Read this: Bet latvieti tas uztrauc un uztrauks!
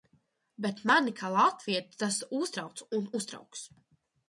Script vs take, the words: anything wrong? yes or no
yes